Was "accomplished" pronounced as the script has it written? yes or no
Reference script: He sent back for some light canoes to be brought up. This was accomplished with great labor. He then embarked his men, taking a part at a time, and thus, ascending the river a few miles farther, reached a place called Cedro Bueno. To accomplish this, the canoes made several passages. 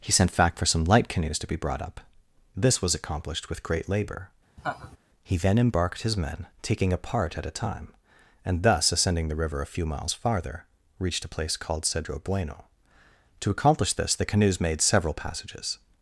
yes